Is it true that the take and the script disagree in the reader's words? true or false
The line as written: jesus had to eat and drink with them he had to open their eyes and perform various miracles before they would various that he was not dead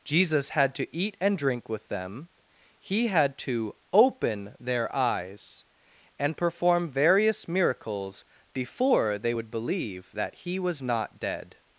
true